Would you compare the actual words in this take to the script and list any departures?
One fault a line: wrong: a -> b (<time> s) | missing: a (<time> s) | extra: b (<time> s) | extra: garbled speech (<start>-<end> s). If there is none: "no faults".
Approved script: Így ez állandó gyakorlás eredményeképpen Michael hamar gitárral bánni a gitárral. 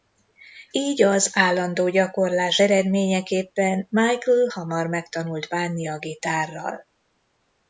wrong: ez -> az (1.0 s)
wrong: gitárral -> megtanult (4.9 s)